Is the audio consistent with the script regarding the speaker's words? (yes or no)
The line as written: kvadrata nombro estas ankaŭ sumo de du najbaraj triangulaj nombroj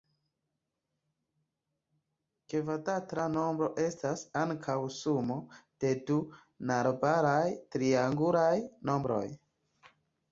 yes